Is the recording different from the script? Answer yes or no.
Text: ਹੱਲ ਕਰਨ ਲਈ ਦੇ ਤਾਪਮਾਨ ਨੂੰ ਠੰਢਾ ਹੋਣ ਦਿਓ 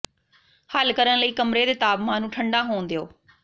yes